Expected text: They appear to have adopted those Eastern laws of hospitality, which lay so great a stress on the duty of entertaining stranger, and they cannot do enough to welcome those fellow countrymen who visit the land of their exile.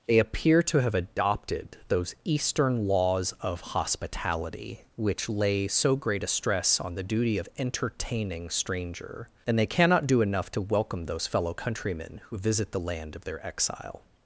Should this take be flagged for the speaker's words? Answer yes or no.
no